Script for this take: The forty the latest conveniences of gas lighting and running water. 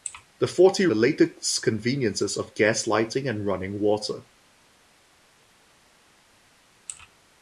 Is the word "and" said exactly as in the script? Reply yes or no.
yes